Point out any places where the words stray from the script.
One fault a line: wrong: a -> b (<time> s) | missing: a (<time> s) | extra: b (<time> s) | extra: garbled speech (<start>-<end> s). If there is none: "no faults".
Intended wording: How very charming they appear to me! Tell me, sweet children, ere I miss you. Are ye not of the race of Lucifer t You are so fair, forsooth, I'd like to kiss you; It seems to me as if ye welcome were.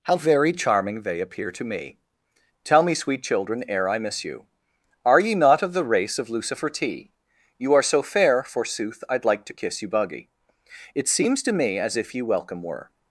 extra: buggy (9.9 s)